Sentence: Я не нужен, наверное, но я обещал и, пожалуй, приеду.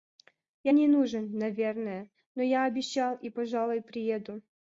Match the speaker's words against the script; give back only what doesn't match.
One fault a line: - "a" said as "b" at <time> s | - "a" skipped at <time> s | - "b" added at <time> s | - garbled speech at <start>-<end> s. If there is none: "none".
none